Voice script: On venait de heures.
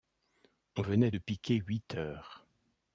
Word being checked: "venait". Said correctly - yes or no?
yes